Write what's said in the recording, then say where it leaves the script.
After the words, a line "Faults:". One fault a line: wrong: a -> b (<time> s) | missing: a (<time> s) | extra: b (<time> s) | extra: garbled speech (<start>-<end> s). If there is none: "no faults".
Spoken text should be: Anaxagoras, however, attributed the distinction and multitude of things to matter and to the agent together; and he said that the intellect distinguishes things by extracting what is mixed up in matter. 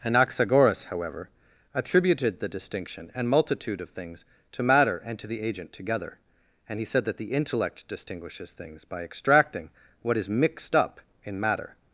Anaxagoras, however, attributed the distinction and multitude of things to matter and to the agent together; and he said that the intellect distinguishes things by extracting what is mixed up in matter.
Faults:
no faults